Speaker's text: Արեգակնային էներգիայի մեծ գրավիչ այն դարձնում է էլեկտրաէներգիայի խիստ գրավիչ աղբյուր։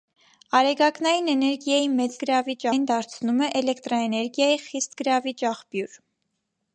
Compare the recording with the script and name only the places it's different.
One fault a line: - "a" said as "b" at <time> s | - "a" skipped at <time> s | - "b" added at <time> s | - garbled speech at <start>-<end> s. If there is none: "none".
none